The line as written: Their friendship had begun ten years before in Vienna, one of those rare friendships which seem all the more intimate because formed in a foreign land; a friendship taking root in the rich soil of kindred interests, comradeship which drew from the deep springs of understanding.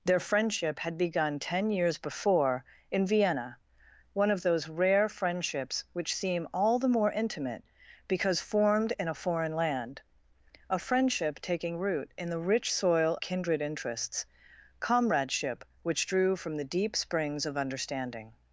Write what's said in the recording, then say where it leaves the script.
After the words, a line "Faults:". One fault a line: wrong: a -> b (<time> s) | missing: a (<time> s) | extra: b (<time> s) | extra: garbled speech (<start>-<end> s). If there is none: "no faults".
Their friendship had begun ten years before in Vienna, one of those rare friendships which seem all the more intimate because formed in a foreign land; a friendship taking root in the rich soil kindred interests, comradeship which drew from the deep springs of understanding.
Faults:
missing: of (13.2 s)